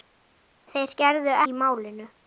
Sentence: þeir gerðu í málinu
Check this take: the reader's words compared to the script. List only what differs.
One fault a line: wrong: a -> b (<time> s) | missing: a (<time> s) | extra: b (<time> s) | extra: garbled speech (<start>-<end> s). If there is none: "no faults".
no faults